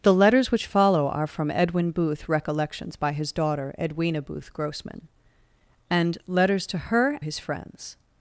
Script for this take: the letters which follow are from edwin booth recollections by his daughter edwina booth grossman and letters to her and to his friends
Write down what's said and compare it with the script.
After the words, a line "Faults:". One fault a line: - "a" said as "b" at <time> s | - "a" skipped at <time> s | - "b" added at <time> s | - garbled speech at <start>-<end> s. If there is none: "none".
the letters which follow are from edwin booth recollections by his daughter edwina booth grossman and letters to her his friends
Faults:
- "and to" skipped at 7.2 s